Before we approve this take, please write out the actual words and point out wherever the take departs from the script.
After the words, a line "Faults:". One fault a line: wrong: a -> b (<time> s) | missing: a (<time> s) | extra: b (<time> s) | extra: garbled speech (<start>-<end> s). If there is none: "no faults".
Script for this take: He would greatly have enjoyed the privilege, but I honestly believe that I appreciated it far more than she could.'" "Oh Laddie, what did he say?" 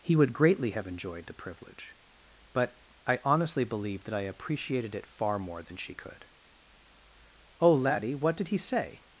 He would greatly have enjoyed the privilege, but I honestly believe that I appreciated it far more than she could.'" "Oh Laddie, what did he say?"
Faults:
no faults